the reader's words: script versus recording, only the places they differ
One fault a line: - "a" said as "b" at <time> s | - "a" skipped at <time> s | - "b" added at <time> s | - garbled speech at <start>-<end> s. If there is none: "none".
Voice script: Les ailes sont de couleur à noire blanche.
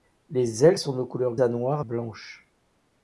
none